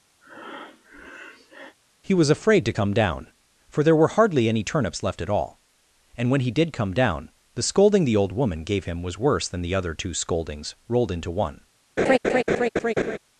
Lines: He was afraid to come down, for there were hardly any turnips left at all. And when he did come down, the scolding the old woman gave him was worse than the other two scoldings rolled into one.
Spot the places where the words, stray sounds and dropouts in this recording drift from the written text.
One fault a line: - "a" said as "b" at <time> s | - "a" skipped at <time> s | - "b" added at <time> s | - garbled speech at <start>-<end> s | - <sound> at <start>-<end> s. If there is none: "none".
- breath at 0.2-1.8 s
- laugh at 12.0-13.2 s